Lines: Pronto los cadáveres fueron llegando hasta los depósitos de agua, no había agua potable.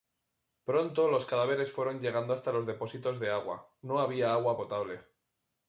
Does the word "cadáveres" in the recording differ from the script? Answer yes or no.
no